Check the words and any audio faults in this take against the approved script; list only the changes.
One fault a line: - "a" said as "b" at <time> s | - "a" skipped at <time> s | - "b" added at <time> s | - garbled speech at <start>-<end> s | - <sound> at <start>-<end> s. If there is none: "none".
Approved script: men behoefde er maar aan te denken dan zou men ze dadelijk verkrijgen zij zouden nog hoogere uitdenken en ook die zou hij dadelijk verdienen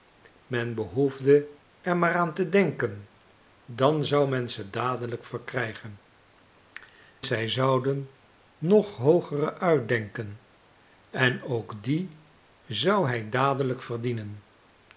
none